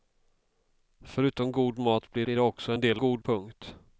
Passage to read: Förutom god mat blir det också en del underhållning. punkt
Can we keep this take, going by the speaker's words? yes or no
no